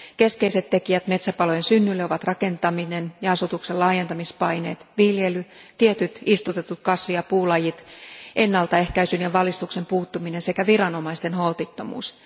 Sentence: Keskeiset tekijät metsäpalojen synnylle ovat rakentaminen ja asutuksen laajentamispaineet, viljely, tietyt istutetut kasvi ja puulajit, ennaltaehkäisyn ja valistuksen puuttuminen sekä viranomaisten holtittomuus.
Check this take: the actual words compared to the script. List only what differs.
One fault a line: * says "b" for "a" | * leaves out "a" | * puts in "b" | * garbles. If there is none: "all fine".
all fine